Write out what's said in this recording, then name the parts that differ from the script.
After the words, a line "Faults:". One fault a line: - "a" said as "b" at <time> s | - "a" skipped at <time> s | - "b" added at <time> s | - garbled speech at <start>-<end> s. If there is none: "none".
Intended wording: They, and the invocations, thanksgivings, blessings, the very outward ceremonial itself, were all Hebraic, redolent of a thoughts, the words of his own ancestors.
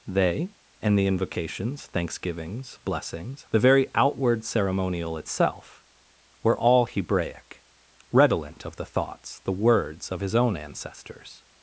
They, and the invocations, thanksgivings, blessings, the very outward ceremonial itself, were all Hebraic, redolent of the thoughts, the words of his own ancestors.
Faults:
- "a" said as "the" at 8.8 s